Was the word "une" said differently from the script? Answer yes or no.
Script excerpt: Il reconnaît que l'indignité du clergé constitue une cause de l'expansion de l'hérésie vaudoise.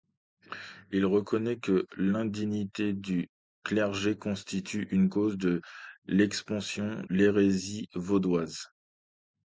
no